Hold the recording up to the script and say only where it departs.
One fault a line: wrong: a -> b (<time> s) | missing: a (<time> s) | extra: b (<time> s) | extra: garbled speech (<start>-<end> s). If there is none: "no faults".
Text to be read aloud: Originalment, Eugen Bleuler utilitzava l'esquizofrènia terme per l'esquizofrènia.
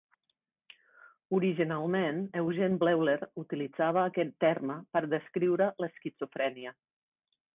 wrong: l'esquizofrènia -> aquest (4.1 s)
extra: descriure (5.1 s)